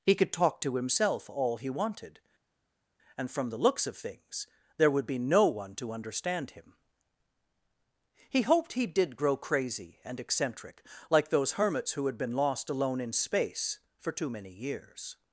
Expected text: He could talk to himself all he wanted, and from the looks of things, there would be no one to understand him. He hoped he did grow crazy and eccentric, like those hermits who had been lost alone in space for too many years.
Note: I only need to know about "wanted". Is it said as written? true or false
true